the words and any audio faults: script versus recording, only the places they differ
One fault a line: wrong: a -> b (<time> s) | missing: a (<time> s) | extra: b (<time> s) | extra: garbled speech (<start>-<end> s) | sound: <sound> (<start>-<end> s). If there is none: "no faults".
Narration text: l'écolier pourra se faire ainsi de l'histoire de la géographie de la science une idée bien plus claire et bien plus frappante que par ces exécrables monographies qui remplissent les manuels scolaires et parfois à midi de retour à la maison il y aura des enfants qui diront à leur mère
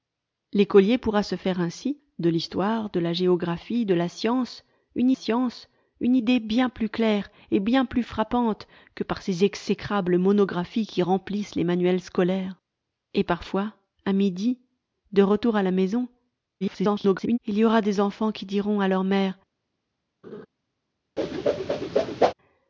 extra: science une (5.1 s)
extra: garbled speech (16.6-17.4 s)
sound: laugh (20.2-20.5 s)
sound: whoosh (21.2-22.3 s)